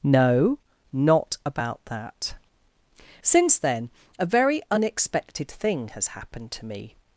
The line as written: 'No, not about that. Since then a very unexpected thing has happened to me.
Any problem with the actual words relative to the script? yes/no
no